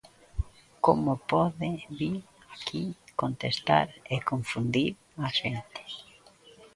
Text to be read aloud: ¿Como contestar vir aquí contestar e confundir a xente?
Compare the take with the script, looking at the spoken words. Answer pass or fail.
fail